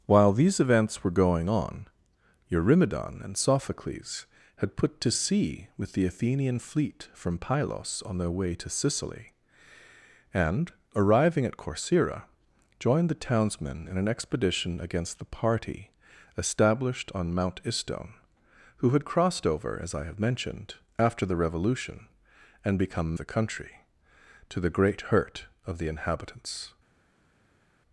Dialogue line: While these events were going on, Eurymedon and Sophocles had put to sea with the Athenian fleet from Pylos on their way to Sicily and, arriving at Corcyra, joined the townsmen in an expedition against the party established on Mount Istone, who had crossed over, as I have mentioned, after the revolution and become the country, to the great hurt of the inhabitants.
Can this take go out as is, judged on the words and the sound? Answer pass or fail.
pass